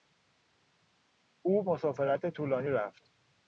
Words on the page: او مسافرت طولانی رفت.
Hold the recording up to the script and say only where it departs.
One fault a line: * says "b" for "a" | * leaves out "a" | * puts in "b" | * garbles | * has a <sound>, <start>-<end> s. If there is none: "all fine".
all fine